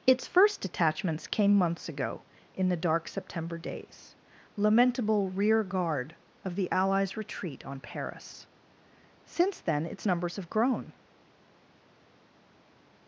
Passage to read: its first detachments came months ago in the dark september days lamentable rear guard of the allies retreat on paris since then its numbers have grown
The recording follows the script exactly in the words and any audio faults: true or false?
true